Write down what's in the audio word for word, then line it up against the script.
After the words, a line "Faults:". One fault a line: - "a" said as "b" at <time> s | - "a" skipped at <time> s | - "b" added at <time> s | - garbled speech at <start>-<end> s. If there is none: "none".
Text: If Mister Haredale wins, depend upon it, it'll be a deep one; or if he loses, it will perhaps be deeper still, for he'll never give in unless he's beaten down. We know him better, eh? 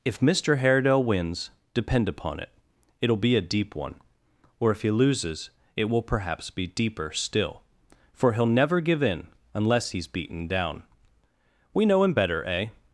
If Mister Haredale wins, depend upon it, it'll be a deep one; or if he loses, it will perhaps be deeper still, for he'll never give in unless he's beaten down. We know him better, eh?
Faults:
none